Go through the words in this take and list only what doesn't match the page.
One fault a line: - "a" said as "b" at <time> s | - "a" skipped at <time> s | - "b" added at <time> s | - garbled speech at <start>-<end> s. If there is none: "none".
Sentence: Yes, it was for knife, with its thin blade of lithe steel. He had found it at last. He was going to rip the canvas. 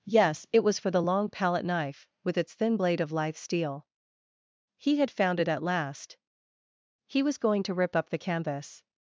- "the long palette" added at 0.9 s
- "up" added at 8.0 s